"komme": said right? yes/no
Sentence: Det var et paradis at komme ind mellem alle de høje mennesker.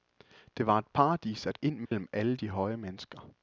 no